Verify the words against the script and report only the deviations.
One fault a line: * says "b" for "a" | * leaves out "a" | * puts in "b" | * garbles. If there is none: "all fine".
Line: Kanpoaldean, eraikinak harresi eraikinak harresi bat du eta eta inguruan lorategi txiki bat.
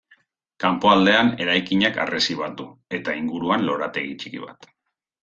* leaves out "eraikinak harresi"
* leaves out "eta"